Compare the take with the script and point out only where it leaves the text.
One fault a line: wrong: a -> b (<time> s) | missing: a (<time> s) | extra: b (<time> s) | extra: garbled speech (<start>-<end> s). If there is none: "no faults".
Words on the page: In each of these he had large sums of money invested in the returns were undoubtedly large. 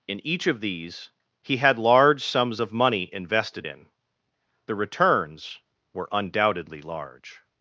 no faults